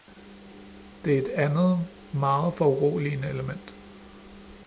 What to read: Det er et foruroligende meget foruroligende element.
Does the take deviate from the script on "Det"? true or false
false